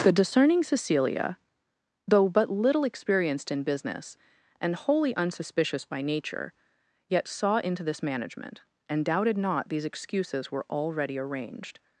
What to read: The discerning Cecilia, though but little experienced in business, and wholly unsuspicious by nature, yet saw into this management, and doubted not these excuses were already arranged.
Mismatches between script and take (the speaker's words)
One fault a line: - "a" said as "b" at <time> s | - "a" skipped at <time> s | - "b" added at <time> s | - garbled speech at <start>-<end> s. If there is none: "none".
none